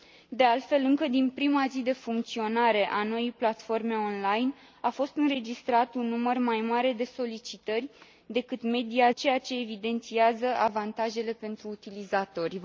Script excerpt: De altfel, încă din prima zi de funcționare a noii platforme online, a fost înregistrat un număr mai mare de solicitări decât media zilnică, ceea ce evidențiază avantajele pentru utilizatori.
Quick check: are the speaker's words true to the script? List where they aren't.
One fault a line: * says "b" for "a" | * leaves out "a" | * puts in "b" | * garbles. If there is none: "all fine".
* leaves out "zilnică"